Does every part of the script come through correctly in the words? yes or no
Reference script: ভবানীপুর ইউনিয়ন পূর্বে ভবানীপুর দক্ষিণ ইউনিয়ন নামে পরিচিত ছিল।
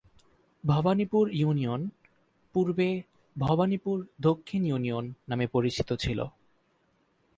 yes